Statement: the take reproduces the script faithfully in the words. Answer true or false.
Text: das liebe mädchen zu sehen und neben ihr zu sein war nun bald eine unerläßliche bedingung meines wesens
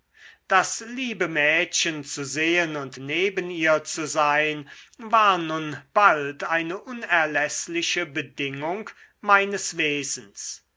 true